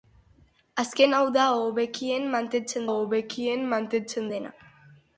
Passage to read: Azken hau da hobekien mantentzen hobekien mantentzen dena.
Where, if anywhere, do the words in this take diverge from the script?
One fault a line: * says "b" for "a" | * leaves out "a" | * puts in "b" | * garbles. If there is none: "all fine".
all fine